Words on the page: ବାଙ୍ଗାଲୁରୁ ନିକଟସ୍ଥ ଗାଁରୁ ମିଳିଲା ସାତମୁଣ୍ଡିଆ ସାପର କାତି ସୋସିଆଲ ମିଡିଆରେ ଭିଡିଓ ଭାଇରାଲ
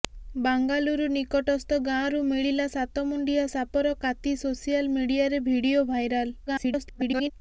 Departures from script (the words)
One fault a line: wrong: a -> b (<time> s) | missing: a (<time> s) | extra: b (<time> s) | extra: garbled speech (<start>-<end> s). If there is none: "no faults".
extra: garbled speech (6.5-7.3 s)